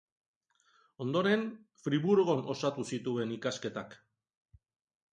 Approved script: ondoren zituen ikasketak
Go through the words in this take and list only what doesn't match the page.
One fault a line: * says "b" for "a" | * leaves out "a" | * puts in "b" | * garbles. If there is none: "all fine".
* puts in "friburgon osatu"